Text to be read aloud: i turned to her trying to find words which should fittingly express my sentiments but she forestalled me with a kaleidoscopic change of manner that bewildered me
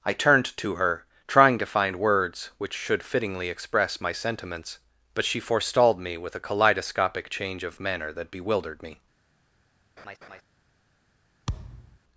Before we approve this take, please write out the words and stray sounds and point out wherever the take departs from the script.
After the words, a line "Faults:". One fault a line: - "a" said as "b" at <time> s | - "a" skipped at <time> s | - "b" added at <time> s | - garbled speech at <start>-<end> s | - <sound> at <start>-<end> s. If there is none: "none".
i turned to her trying to find words which should fittingly express my sentiments but she forestalled me with a kaleidoscopic change of manner that bewildered me
Faults:
- laugh at 10.0-10.4 s
- thud at 11.5-12.0 s